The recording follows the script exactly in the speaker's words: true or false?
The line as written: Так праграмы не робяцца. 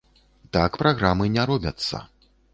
true